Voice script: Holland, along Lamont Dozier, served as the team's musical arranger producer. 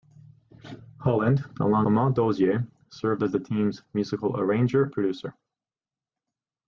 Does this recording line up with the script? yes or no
yes